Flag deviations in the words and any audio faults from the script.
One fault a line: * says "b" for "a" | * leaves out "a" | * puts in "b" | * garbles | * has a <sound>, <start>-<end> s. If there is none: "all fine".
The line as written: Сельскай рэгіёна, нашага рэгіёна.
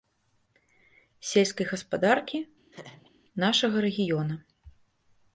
* says "гаспадаркі" for "рэгіёна"
* has a laugh, 2.7-3.1 s